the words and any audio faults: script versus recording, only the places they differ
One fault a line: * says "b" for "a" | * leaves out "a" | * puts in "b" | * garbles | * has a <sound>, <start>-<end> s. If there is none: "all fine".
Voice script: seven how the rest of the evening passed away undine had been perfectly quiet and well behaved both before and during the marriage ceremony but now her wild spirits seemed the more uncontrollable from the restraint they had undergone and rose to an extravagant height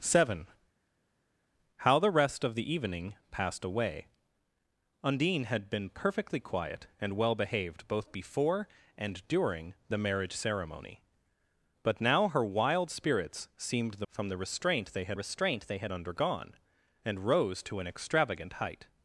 * says "from the restraint they had" for "more uncontrollable from the"